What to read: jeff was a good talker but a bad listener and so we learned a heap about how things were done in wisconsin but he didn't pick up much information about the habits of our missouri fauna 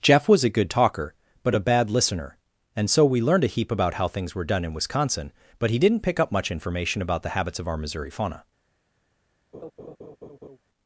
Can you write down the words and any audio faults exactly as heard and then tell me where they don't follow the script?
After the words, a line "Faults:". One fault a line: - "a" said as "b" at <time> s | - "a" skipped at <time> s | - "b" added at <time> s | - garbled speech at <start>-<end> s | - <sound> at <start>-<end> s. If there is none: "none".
jeff was a good talker but a bad listener and so we learned a heap about how things were done in wisconsin but he didn't pick up much information about the habits of our missouri fauna
Faults:
- laugh at 9.5-10.6 s